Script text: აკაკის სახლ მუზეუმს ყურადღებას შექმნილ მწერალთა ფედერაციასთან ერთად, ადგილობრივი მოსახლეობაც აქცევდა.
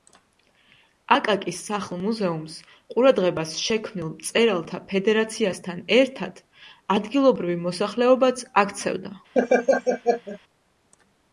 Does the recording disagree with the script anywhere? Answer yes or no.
no